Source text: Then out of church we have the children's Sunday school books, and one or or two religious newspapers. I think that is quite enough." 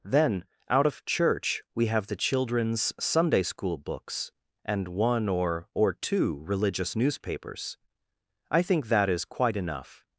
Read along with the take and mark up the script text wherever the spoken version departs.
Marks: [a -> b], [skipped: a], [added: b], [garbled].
Then out of church we have the children's Sunday school books, and one or or two religious newspapers. I think that is quite enough."